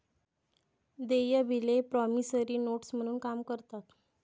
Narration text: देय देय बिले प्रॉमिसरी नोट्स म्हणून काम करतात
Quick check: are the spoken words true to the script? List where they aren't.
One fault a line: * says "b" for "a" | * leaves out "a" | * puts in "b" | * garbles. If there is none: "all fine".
* leaves out "देय"